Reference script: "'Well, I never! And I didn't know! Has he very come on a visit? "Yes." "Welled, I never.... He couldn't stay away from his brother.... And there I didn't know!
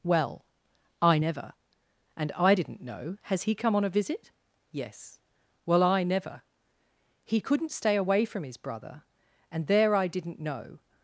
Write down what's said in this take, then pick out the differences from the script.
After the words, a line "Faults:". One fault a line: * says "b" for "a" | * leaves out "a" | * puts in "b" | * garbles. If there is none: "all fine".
"'Well, I never! And I didn't know! Has he come on a visit? "Yes." "Well, I never.... He couldn't stay away from his brother.... And there I didn't know!
Faults:
* leaves out "very"
* says "Well" for "Welled"